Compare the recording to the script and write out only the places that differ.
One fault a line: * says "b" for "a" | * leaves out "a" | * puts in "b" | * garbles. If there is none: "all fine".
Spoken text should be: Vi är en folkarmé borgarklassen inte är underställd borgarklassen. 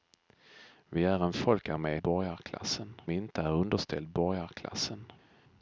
all fine